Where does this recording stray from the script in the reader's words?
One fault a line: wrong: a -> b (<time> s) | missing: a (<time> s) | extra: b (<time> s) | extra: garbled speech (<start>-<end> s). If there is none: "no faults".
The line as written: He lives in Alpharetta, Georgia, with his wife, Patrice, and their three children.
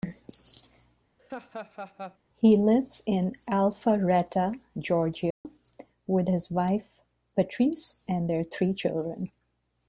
no faults